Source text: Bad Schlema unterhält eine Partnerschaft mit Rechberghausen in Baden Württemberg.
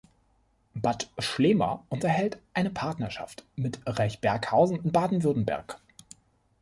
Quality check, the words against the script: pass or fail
pass